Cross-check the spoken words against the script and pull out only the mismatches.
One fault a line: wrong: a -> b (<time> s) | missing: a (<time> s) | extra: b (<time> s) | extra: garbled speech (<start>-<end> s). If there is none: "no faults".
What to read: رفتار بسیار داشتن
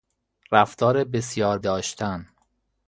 no faults